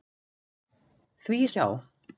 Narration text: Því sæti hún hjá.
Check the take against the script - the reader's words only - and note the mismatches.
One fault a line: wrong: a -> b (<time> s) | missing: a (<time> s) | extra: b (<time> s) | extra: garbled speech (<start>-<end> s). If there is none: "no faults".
missing: sæti hún (1.4 s)